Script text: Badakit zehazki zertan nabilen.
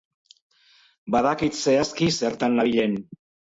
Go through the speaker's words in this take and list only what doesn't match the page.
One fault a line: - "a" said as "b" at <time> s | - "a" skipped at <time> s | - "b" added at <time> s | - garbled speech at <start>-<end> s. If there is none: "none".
none